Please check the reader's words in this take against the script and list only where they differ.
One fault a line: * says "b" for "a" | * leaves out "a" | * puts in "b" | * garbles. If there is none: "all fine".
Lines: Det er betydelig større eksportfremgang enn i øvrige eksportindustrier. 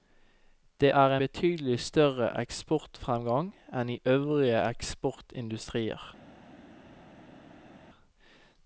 all fine